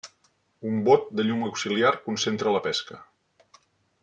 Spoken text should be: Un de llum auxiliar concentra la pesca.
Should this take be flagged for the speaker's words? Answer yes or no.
yes